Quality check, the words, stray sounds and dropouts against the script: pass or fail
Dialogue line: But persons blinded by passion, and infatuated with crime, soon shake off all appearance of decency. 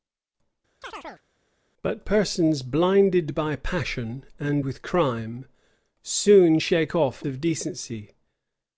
fail